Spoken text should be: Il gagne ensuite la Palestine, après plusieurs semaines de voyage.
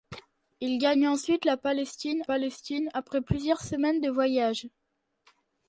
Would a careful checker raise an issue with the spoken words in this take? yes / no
yes